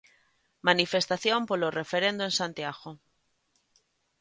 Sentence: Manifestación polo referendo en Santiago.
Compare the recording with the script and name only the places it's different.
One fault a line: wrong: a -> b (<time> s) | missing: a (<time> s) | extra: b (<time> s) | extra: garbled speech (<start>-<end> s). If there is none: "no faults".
no faults